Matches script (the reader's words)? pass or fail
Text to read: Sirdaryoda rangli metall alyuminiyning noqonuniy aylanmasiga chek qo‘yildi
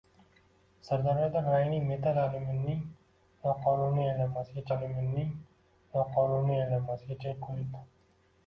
fail